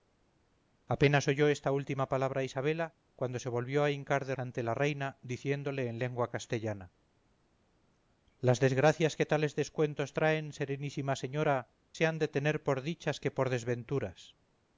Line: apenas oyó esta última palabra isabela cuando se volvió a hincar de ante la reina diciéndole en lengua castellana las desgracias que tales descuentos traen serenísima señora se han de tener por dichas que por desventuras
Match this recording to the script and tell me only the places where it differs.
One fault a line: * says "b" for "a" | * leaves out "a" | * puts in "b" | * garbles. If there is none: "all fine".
all fine